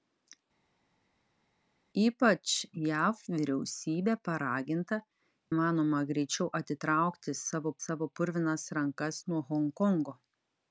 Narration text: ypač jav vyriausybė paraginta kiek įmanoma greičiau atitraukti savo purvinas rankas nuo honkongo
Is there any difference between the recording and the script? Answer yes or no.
yes